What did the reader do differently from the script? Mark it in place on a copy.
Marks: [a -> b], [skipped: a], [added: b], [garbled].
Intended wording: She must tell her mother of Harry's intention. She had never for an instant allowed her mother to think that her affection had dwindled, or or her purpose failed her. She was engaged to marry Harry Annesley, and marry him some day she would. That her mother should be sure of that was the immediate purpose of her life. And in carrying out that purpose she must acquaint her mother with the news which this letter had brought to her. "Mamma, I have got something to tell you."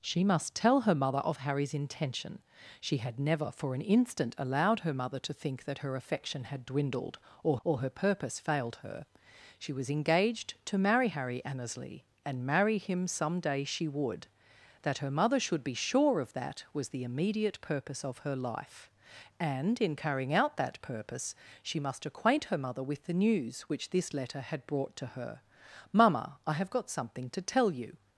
She must tell her mother of Harry's intention. She had never for an instant allowed her mother to think that her affection had dwindled, or or her purpose failed her. She was engaged to marry Harry Annesley, and marry him some day she would. That her mother should be sure of that was the immediate purpose of her life. And in carrying out that purpose she must acquaint her mother with the news which this letter had brought to her. "Mamma, I have got something to tell you."